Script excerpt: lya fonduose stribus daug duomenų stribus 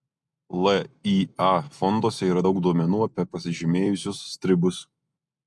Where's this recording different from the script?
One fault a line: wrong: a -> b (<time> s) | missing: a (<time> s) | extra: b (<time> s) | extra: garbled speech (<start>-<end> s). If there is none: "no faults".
wrong: stribus -> yra (2.3 s)
extra: apie pasižymėjusius (3.1 s)